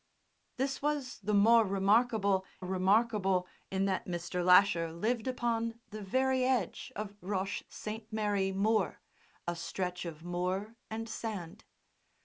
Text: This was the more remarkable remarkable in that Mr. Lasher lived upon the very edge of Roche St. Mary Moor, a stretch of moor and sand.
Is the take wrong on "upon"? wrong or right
right